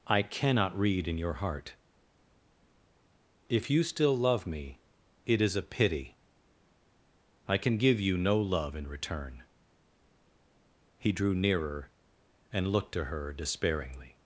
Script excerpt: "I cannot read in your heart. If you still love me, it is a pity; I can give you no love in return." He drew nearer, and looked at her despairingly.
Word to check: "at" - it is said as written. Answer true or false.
false